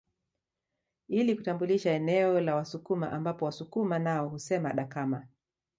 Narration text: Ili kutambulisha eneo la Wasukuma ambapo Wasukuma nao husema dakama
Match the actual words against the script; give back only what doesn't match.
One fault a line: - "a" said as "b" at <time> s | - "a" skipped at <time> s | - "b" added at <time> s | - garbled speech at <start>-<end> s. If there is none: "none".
none